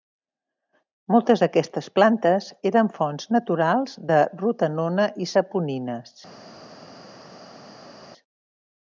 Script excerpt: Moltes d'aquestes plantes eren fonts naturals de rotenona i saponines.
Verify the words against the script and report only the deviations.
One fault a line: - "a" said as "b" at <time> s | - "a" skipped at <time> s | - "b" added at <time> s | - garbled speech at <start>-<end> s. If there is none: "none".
none